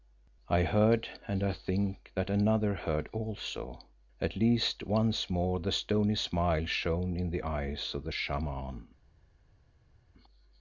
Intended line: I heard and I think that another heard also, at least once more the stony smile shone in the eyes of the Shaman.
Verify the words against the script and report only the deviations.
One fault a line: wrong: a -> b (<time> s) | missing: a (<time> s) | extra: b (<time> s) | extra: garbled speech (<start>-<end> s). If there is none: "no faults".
no faults